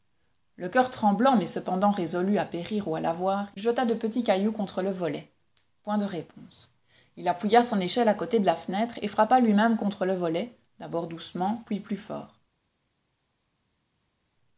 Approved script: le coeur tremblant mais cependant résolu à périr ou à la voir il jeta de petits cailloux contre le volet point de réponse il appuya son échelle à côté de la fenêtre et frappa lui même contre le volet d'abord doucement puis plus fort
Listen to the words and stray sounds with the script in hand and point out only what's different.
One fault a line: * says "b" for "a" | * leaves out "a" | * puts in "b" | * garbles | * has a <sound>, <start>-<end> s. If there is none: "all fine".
* leaves out "il"